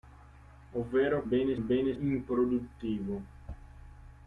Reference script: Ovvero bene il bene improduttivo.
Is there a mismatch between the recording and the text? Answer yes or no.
no